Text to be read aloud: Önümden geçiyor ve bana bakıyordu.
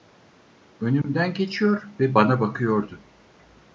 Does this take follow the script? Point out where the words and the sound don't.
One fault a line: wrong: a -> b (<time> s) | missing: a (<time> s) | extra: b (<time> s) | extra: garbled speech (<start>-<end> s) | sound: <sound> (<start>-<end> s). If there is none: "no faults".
sound: dropout (1.0-1.0 s)